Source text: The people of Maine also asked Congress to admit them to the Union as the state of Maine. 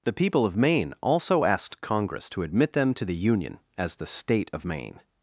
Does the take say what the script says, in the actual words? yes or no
yes